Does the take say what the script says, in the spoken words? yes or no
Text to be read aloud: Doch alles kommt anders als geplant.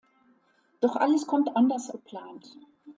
no